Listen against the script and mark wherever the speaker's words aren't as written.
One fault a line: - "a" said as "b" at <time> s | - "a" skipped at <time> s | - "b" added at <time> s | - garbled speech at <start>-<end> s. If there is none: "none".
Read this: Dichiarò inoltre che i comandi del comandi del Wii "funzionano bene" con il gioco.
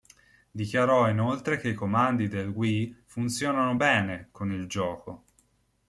- "comandi del" skipped at 2.5 s